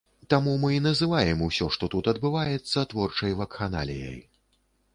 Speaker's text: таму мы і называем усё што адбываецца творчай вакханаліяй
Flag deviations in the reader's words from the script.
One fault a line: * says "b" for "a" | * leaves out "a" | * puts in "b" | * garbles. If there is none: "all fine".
* puts in "тут"